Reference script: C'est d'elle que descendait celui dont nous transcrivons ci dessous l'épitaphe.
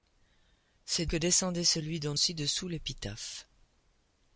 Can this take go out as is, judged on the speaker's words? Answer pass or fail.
fail